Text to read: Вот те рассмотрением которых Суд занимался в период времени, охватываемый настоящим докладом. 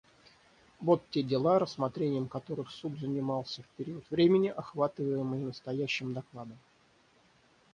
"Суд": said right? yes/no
yes